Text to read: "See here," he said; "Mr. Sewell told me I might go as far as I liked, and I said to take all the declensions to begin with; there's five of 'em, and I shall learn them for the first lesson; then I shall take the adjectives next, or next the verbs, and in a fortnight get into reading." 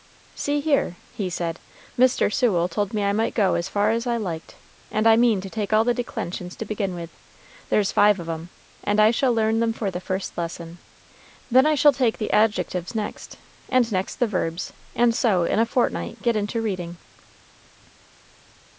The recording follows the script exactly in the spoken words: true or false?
false